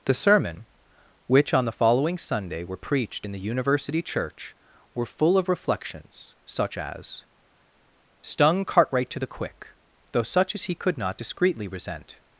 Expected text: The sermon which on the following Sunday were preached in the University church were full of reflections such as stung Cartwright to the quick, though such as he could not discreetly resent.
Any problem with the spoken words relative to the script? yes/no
no